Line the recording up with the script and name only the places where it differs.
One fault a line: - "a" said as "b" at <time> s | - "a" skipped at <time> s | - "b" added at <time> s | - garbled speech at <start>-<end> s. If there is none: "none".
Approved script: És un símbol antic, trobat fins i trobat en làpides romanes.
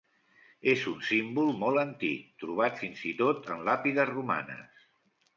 - "molt" added at 1.6 s
- "trobat" said as "tot" at 3.2 s